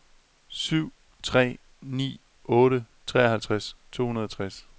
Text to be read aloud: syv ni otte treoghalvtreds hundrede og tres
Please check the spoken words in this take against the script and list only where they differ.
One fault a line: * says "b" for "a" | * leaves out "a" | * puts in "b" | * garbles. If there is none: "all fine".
* puts in "tre"
* puts in "to"